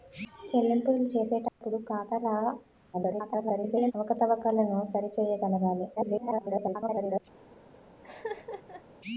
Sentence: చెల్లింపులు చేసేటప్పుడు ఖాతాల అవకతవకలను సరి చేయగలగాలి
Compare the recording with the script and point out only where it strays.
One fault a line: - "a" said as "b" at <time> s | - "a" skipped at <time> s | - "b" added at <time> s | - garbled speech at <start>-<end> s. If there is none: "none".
- garbled speech at 2.9-3.9 s
- garbled speech at 6.0-7.2 s